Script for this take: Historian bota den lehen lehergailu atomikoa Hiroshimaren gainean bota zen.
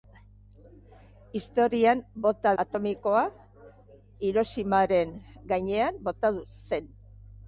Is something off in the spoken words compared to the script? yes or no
yes